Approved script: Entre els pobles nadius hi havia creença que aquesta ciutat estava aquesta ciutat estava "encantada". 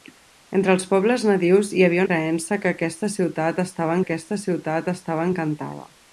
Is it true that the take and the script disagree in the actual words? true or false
false